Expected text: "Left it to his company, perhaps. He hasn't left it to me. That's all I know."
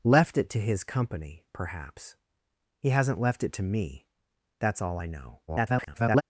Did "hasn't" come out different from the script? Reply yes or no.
no